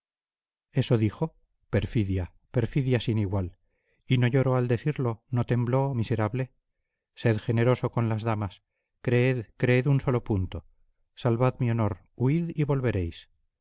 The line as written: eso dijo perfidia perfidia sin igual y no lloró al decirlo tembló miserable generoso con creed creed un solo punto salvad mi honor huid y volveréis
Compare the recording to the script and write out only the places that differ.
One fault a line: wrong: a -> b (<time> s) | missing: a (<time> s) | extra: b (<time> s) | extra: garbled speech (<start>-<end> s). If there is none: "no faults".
extra: no (5.3 s)
extra: sed (7.1 s)
extra: las damas (8.1 s)